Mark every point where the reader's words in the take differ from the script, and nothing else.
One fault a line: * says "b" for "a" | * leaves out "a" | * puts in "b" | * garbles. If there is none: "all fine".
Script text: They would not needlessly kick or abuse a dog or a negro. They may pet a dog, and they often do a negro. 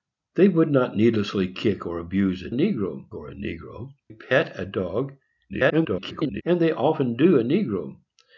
* says "negro" for "dog"
* leaves out "They may"
* garbles